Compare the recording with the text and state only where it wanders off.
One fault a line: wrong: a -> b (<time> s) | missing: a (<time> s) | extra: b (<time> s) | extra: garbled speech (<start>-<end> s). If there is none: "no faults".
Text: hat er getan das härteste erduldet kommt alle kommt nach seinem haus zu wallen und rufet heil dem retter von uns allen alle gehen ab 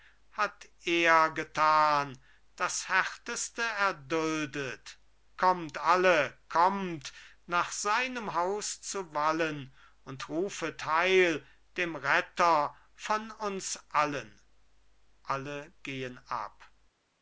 no faults